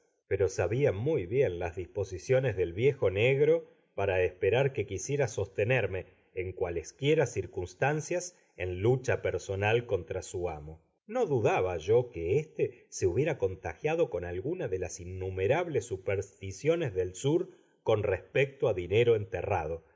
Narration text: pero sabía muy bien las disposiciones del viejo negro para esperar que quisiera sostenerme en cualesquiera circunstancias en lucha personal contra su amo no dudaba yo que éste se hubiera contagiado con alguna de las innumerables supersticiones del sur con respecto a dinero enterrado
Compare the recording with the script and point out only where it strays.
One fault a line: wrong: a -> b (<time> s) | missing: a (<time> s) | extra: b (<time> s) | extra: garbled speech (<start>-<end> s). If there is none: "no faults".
no faults